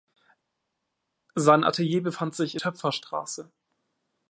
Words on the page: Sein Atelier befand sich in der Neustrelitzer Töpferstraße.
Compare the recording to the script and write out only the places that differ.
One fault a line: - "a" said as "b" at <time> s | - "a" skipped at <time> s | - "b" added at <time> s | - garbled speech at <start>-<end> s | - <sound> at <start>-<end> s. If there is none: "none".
- "der Neustrelitzer" skipped at 2.6 s